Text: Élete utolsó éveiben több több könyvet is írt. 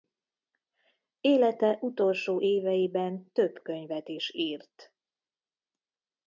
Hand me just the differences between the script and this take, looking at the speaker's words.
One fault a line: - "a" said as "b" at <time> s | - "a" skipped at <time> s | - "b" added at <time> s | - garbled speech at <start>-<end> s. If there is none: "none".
- "több" skipped at 3.6 s